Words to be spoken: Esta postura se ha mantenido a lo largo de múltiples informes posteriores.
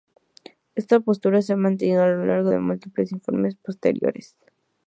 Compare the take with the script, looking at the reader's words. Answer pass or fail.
pass